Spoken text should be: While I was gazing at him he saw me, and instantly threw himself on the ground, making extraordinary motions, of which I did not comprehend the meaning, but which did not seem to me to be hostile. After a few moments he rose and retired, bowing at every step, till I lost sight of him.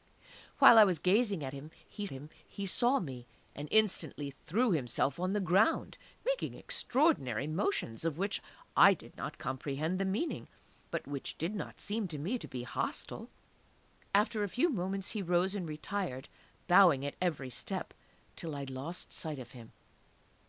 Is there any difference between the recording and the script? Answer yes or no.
yes